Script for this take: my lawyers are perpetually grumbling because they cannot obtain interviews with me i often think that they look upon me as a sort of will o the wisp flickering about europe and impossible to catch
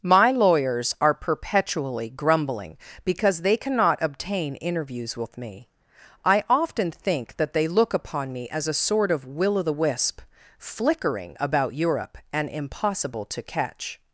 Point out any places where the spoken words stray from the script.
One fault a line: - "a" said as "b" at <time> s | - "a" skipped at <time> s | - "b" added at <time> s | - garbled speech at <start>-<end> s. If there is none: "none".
none